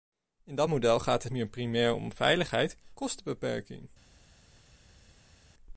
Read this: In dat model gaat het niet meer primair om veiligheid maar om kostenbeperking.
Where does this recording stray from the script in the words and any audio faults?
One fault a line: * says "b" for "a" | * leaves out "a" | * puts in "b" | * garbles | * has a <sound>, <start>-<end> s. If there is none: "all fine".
* leaves out "niet"
* leaves out "maar om"